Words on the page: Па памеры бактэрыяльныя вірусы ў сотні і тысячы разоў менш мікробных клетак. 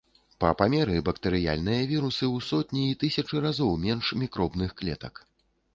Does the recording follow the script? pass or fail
pass